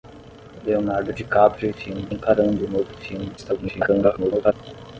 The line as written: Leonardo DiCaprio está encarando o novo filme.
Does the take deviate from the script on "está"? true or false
true